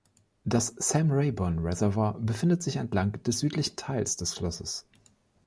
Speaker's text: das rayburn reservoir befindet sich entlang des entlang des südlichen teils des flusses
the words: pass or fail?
fail